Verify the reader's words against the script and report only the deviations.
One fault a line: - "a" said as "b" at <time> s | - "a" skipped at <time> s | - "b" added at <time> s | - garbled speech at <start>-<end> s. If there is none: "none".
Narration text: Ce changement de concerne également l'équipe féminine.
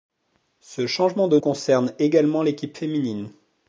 none